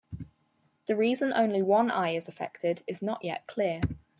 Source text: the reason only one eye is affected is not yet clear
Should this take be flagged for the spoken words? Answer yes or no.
no